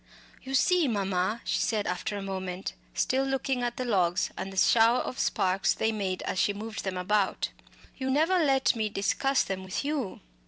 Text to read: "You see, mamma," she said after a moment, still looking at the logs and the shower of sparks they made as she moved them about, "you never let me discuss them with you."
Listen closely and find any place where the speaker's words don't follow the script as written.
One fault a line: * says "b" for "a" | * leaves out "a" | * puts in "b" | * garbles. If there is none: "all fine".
all fine